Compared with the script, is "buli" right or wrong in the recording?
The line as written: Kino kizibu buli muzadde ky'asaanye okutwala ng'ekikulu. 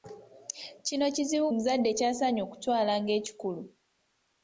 wrong